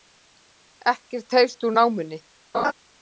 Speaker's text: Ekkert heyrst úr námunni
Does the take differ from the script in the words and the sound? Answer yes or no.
yes